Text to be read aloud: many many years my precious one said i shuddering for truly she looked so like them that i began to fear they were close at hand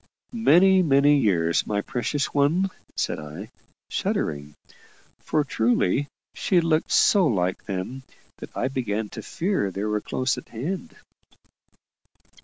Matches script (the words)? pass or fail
pass